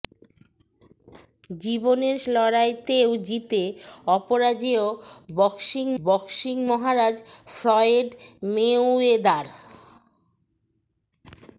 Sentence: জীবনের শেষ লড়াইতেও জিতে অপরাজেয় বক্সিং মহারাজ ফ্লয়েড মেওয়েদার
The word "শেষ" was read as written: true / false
false